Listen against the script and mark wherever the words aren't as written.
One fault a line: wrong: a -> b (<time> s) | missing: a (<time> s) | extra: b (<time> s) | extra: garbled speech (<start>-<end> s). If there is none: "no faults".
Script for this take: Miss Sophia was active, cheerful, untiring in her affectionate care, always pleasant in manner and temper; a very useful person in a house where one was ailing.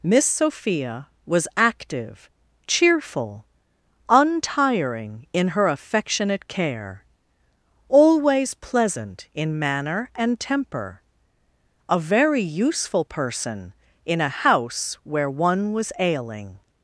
no faults